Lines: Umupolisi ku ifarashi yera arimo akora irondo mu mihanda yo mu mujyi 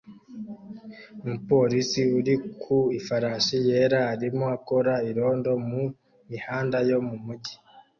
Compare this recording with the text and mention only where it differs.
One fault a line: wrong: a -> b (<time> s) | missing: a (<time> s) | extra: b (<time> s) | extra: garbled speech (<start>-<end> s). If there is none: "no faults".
extra: uri (2.2 s)